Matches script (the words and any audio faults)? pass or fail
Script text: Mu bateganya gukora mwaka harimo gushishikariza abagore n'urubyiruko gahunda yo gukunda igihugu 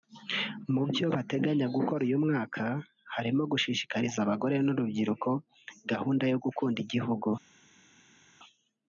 fail